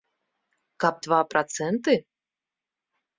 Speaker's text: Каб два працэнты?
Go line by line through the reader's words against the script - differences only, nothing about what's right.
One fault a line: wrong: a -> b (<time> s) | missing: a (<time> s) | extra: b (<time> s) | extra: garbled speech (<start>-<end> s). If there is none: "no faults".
no faults